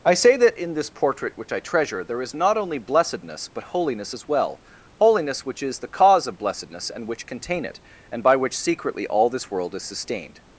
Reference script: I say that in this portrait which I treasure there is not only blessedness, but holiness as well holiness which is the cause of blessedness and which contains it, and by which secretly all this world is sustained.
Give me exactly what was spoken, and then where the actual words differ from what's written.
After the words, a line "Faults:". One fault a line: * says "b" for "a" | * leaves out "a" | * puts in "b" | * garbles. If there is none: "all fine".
I say that in this portrait which I treasure there is not only blessedness, but holiness as well holiness which is the cause of blessedness and which contain it, and by which secretly all this world is sustained.
Faults:
* says "contain" for "contains"